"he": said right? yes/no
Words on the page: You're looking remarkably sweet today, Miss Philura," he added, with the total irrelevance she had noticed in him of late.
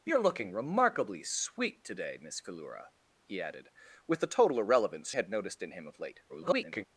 yes